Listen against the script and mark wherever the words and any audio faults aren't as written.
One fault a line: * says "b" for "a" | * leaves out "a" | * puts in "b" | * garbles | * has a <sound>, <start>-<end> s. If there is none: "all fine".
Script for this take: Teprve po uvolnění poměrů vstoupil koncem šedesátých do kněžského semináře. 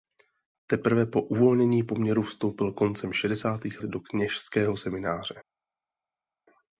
all fine